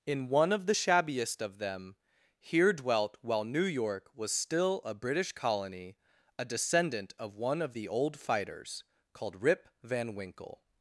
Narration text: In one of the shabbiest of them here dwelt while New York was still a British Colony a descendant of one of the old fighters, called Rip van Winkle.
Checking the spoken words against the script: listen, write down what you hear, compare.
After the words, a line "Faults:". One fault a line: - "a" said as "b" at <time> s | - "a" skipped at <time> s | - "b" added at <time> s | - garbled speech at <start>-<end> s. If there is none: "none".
In one of the shabbiest of them here dwelt while New York was still a British Colony a descendant of one of the old fighters, called Rip van Winkle.
Faults:
none